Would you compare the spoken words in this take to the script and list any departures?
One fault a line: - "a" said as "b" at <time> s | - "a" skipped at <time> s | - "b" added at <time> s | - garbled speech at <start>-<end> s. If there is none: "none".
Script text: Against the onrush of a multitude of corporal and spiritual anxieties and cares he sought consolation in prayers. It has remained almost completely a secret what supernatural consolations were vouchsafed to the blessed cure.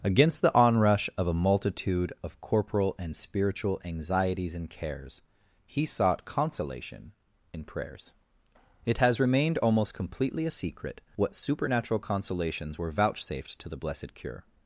none